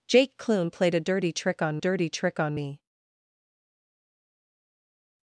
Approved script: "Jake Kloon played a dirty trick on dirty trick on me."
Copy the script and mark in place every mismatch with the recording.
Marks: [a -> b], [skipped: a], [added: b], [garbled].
"Jake Kloon played a dirty trick on dirty trick on me."